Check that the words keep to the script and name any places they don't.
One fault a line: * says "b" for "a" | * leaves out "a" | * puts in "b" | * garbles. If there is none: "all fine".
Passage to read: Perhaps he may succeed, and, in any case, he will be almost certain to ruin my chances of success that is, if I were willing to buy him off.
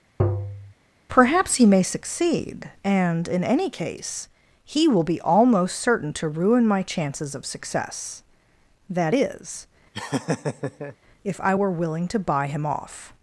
all fine